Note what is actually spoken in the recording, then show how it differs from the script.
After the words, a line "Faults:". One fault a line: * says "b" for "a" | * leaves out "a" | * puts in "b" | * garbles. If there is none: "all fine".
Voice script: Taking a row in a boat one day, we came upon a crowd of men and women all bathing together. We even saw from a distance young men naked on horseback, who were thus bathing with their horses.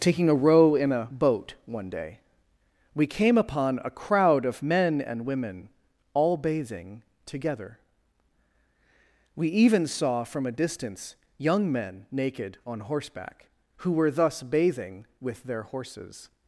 Taking a row in a boat one day, we came upon a crowd of men and women all bathing together. We even saw from a distance young men naked on horseback, who were thus bathing with their horses.
Faults:
all fine